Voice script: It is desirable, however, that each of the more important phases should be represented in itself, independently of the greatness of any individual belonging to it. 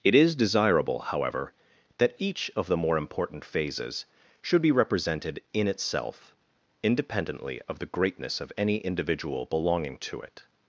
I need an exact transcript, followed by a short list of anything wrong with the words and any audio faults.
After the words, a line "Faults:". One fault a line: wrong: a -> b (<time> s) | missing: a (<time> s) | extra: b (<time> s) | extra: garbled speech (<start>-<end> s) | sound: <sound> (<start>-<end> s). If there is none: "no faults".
It is desirable, however, that each of the more important phases should be represented in itself, independently of the greatness of any individual belonging to it.
Faults:
no faults